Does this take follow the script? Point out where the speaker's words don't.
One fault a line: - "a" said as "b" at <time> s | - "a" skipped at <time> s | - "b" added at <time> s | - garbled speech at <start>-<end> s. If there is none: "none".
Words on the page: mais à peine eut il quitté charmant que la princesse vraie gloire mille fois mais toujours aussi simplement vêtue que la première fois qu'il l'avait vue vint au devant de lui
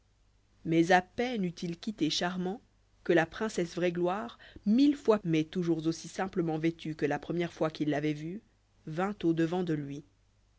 none